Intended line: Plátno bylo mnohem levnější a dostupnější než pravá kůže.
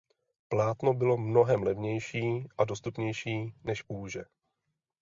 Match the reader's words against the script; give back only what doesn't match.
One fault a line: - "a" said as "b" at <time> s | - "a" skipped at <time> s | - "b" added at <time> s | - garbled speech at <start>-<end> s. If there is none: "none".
- "pravá" skipped at 3.8 s